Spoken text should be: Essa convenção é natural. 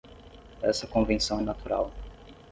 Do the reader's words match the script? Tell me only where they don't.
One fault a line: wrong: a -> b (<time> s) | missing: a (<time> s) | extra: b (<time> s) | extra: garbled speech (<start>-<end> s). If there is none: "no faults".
no faults